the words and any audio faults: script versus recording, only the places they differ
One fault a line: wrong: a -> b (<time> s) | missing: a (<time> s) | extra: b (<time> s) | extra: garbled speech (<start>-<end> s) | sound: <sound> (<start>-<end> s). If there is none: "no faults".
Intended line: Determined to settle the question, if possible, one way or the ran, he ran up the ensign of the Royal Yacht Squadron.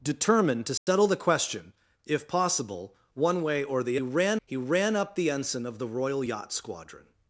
sound: dropout (0.8-0.9 s)